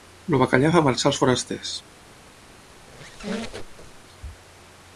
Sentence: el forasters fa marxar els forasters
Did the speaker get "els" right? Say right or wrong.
right